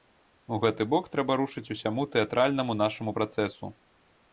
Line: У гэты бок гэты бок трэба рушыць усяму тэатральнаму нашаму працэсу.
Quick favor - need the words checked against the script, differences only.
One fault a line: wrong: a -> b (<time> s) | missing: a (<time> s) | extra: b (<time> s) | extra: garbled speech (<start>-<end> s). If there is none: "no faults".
missing: гэты бок (1.1 s)